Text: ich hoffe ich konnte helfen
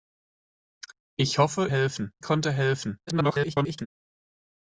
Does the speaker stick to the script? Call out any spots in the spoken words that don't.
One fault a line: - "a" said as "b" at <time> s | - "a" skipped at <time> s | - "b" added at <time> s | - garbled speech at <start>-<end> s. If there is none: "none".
- "ich" said as "helfen" at 1.7 s
- garbled speech at 3.1-3.9 s